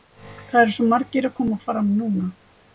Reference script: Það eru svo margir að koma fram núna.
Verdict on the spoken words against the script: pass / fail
pass